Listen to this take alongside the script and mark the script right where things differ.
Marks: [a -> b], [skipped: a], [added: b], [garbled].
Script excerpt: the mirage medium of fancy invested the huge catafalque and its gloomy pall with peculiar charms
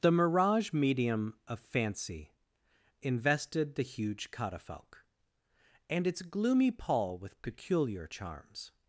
the mirage medium of fancy invested the huge catafalque and its gloomy pall with peculiar charms